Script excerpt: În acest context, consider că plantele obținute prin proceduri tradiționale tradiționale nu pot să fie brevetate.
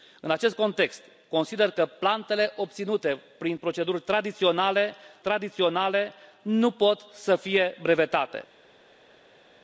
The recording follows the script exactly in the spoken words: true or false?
true